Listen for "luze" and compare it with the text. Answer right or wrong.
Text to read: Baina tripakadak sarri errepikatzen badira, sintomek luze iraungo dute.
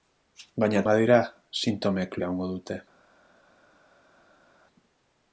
wrong